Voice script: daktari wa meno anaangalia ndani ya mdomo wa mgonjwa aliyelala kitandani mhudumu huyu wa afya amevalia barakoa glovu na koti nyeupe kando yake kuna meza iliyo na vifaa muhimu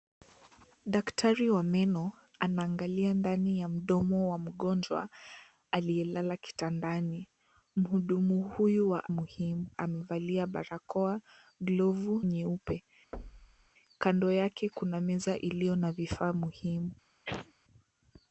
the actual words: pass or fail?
fail